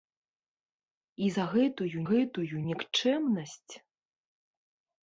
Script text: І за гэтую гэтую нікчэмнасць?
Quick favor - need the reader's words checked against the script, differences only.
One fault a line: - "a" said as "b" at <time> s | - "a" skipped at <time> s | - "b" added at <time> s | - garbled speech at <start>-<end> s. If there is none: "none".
none